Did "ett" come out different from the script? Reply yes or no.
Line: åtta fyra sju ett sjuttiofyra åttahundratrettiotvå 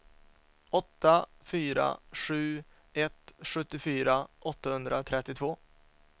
no